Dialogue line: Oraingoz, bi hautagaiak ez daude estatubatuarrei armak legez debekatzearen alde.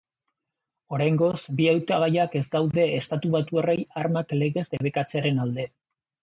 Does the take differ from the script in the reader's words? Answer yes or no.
no